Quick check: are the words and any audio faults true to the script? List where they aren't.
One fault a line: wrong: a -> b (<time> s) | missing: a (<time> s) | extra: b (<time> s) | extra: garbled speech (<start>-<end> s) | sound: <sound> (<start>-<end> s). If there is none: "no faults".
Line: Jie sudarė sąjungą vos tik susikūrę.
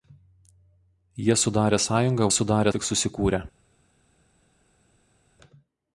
wrong: vos -> sudarė (2.3 s)